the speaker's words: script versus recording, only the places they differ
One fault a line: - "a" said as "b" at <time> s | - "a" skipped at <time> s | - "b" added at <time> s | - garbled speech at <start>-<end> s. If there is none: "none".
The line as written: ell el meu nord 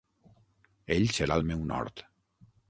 - "serà" added at 1.2 s